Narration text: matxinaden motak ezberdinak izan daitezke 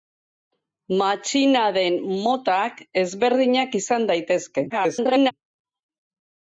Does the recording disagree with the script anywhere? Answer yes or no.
yes